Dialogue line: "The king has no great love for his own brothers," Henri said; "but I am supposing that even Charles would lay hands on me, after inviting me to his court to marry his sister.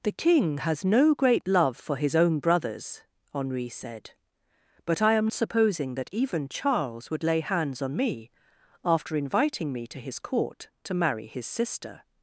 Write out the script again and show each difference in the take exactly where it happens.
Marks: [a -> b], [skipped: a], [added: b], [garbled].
"The king has no great love for his own brothers," Henri said; "but I am supposing that even Charles would lay hands on me, after inviting me to his court to marry his sister.